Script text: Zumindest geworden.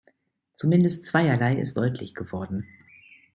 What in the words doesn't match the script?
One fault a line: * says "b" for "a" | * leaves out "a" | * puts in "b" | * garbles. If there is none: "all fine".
* puts in "zweierlei ist deutlich"